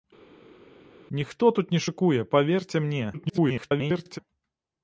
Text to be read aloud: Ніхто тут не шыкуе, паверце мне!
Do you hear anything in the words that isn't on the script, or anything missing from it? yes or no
yes